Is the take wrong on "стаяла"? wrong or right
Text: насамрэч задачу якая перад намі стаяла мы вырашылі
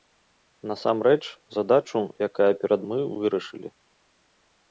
wrong